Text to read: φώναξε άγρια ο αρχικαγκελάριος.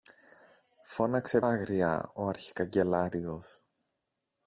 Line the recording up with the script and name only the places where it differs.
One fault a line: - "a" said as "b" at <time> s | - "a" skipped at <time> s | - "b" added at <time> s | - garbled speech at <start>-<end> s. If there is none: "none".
none